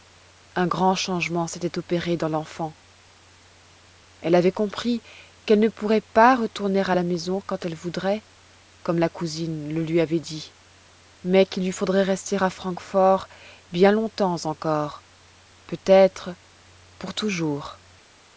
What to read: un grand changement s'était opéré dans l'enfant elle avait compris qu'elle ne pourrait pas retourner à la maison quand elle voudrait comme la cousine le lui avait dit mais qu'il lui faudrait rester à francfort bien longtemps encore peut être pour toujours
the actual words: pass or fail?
pass